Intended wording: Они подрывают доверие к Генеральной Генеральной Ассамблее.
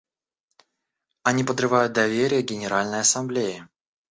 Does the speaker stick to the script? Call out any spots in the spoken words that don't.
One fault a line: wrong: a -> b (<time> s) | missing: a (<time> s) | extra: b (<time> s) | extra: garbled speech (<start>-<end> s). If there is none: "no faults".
missing: Генеральной (3.0 s)